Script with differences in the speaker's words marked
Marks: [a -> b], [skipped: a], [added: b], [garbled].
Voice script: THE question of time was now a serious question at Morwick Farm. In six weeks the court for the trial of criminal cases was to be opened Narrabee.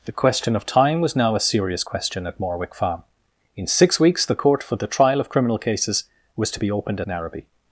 THE question of time was now a serious question at Morwick Farm. In six weeks the court for the trial of criminal cases was to be opened Narrabee.